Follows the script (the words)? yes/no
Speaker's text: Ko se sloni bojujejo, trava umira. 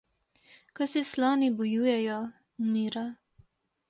no